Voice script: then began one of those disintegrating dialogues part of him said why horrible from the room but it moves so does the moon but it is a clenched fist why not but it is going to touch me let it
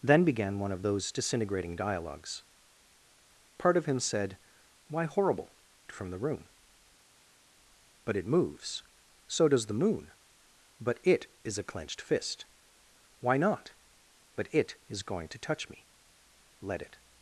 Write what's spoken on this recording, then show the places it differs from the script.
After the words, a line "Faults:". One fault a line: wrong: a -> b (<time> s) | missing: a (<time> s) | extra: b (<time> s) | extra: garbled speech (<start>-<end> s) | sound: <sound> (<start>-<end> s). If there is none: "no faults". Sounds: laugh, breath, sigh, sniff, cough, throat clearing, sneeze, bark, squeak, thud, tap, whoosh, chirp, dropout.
then began one of those disintegrating dialogues part of him said why horrible from the room but it moves so does the moon but it is a clenched fist why not but it is going to touch me let it
Faults:
no faults